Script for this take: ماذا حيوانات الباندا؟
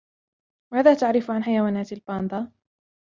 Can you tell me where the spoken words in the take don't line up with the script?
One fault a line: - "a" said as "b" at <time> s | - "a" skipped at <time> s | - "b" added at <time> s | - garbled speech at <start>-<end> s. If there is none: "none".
- "تعرف عن" added at 0.9 s